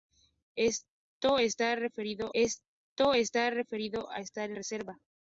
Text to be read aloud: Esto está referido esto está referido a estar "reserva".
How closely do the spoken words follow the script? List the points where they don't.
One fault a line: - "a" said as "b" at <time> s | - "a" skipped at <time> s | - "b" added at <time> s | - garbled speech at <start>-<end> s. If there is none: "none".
none